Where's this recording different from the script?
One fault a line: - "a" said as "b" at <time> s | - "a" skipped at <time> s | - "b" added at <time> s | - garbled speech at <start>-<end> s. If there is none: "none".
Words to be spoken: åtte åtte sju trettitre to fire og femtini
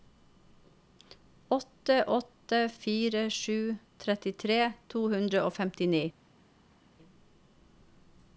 - "fire" added at 2.7 s
- "fire" said as "hundre" at 5.2 s